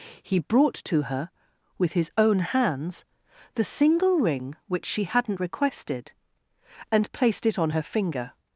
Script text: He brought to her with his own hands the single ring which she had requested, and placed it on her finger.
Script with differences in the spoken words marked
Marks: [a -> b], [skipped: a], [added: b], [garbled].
He brought to her with his own hands the single ring which she [had -> hadn't] requested, and placed it on her finger.